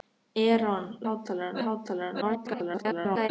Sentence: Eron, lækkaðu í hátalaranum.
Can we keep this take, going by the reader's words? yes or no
no